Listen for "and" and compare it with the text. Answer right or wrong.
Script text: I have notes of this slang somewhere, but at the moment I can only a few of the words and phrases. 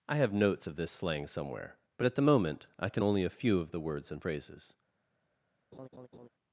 right